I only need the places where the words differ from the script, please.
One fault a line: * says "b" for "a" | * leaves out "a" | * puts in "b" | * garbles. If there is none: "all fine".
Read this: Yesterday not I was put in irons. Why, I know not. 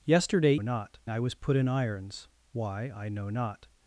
all fine